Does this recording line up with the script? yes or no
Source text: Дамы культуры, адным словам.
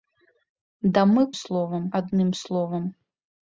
no